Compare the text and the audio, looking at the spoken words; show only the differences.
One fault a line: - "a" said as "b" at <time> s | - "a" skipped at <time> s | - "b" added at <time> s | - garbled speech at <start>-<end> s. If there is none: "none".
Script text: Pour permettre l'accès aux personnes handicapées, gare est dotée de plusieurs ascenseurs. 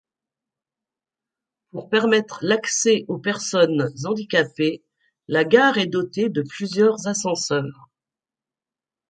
- "la" added at 5.3 s